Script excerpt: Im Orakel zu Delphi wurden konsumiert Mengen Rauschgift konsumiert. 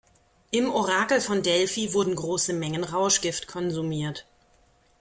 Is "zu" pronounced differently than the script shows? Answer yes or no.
yes